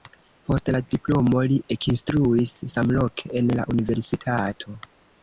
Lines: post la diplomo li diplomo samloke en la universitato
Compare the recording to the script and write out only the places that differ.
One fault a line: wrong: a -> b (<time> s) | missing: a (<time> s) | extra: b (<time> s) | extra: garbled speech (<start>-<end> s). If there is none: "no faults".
wrong: diplomo -> ekinstruis (1.8 s)